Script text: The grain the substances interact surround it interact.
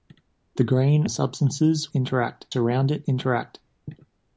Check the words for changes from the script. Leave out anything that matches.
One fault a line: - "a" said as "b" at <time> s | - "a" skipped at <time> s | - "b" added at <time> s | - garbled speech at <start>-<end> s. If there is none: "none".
none